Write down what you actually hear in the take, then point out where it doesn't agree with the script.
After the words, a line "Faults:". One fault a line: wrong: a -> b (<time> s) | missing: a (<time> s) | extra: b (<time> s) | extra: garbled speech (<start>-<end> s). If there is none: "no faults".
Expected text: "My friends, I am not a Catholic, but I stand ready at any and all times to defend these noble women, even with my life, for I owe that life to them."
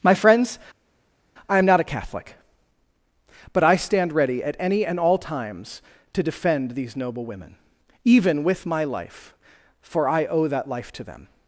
"My friends, I am not a Catholic, but I stand ready at any and all times to defend these noble women, even with my life, for I owe that life to them."
Faults:
no faults